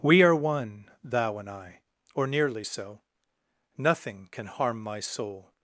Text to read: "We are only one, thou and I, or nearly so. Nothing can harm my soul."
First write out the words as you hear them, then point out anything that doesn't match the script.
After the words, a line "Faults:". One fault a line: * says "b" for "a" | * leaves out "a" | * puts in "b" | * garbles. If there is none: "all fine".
"We are one, thou and I, or nearly so. Nothing can harm my soul."
Faults:
* leaves out "only"